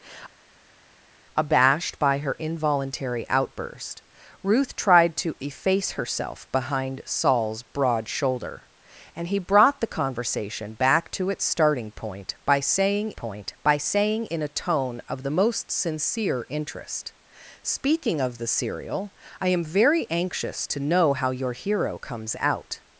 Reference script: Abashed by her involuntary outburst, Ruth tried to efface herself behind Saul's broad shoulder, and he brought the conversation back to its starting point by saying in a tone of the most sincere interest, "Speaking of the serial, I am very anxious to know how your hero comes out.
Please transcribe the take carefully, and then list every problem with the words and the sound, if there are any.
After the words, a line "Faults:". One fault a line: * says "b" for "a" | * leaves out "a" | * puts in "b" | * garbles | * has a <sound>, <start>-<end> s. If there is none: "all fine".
Abashed by her involuntary outburst, Ruth tried to efface herself behind Saul's broad shoulder, and he brought the conversation back to its starting point by saying point by saying in a tone of the most sincere interest, "Speaking of the serial, I am very anxious to know how your hero comes out.
Faults:
* puts in "point by saying"